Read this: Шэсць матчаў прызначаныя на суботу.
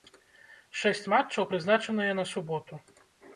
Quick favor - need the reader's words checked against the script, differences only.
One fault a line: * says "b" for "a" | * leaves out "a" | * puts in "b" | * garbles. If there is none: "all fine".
all fine